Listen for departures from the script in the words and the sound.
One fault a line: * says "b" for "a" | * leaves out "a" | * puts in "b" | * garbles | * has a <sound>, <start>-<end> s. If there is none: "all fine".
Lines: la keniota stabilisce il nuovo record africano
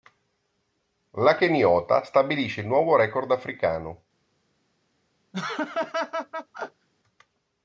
* has a laugh, 5.3-6.9 s